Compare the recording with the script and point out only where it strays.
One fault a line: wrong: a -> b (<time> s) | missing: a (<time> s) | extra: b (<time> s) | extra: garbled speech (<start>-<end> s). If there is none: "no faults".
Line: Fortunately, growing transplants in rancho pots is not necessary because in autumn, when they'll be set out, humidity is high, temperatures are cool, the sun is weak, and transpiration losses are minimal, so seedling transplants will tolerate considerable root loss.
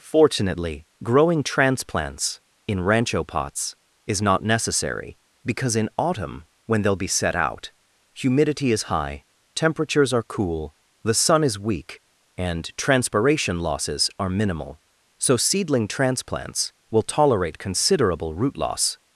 no faults